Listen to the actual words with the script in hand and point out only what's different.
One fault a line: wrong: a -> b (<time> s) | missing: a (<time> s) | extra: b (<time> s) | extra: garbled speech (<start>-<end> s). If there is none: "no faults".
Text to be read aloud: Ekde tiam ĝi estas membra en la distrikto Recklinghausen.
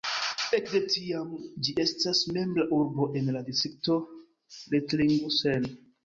extra: urbo (2.8 s)